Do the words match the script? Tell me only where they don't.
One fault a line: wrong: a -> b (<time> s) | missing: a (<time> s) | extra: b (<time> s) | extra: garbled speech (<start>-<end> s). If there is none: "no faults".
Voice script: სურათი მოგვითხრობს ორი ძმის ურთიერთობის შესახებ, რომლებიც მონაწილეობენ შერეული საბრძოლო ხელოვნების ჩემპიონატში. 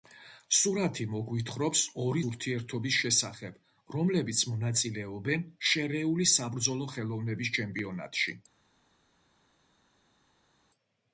missing: ძმის (2.2 s)